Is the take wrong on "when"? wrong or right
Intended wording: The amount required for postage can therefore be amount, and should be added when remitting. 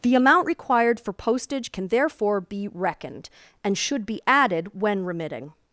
right